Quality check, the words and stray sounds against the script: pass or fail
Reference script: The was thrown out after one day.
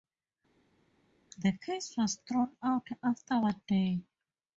fail